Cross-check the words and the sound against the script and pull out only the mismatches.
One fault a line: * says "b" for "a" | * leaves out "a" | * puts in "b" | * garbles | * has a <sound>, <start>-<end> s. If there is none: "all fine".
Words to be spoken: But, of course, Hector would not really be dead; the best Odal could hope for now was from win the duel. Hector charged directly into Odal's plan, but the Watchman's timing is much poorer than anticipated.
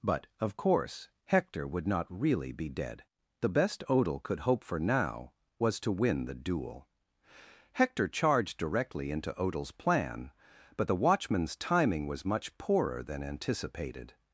* says "to" for "from"
* says "was" for "is"